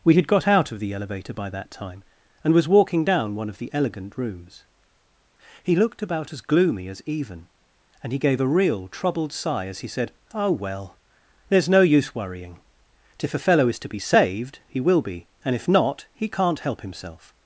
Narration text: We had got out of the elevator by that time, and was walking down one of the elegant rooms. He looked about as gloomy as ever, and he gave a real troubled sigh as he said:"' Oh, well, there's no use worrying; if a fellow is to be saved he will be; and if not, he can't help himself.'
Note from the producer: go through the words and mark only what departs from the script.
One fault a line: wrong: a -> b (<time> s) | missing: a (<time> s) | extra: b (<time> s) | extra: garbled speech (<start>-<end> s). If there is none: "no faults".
wrong: ever -> even (7.0 s)